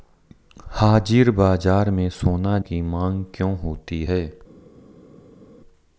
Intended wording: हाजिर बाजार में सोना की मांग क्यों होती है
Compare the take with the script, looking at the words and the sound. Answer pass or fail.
pass